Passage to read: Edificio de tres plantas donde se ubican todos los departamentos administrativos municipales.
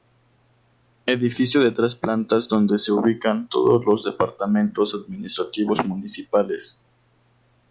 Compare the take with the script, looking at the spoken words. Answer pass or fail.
pass